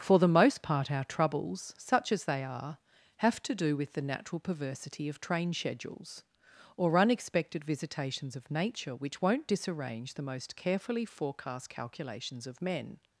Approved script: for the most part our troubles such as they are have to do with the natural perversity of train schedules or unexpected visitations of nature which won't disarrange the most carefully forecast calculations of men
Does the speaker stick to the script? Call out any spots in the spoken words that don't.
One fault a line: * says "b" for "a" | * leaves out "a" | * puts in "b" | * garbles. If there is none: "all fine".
all fine